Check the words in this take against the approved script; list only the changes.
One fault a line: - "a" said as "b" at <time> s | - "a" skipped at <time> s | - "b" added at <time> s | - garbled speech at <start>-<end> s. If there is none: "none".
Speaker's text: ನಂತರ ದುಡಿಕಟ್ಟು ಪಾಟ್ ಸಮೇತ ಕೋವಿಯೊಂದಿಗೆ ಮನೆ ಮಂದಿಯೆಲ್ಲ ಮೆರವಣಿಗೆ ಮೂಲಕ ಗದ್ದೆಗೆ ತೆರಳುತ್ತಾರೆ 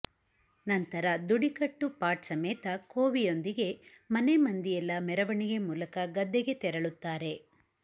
none